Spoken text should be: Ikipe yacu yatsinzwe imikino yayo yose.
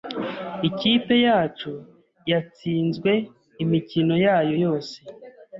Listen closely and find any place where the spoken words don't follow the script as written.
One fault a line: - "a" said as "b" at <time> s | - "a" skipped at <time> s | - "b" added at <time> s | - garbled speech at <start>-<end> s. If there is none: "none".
none